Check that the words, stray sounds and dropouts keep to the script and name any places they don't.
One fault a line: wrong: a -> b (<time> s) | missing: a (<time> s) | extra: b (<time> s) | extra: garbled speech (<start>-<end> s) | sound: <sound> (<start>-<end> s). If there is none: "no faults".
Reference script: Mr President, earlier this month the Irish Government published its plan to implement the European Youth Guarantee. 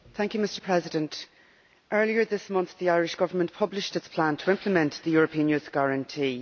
no faults